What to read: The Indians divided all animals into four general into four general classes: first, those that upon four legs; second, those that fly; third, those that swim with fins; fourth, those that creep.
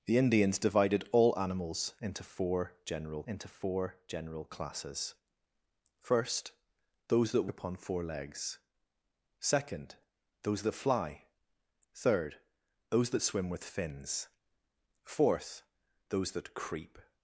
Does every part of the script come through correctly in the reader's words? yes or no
yes